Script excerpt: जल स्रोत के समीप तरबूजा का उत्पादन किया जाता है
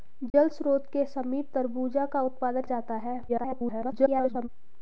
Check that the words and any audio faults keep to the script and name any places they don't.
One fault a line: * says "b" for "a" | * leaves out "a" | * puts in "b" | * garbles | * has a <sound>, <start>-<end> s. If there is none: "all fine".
* has a dropout, 0.3-0.3 s
* leaves out "किया"
* garbles